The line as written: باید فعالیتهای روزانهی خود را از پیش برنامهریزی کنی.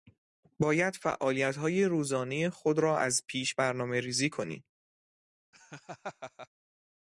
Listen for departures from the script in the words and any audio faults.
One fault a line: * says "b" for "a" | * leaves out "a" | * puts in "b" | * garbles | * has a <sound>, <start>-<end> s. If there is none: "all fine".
* has a laugh, 5.5-6.5 s